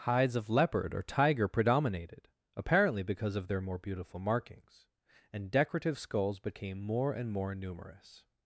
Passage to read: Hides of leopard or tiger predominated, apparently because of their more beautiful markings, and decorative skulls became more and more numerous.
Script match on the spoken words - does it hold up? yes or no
yes